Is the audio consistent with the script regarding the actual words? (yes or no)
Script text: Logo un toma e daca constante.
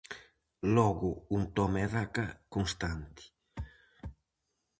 yes